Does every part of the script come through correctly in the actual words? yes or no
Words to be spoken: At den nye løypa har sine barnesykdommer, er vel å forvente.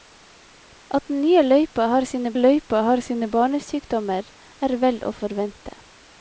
no